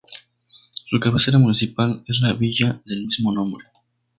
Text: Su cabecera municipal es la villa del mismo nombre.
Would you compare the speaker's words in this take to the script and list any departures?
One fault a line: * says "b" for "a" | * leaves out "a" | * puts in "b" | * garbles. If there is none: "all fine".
all fine